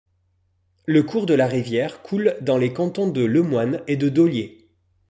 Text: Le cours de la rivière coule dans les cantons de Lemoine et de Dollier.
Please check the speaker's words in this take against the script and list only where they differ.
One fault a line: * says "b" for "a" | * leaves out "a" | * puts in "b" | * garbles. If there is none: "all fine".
all fine